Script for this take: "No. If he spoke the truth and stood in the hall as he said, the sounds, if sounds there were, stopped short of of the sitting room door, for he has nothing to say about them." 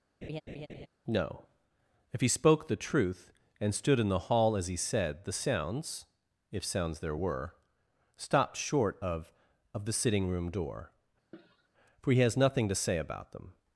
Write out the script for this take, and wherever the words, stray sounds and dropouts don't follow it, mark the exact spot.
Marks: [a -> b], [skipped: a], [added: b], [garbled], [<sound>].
[laugh] "No. If he spoke the truth and stood in the hall as he said, the sounds, if sounds there were, stopped short of of the sitting room door, [cough] for he has nothing to say about them."